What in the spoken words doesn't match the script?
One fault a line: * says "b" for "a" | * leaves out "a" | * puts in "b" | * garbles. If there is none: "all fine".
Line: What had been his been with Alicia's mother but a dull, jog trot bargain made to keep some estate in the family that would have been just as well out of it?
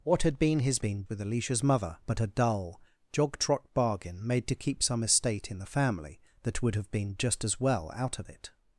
all fine